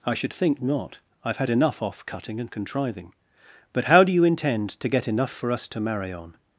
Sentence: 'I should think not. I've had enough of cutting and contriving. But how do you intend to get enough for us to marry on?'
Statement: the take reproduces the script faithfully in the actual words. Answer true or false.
false